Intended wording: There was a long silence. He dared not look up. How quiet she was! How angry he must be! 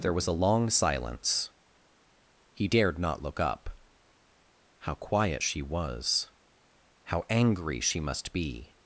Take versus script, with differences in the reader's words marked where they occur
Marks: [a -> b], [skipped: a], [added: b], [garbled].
There was a long silence. He dared not look up. How quiet she was! How angry [he -> she] must be!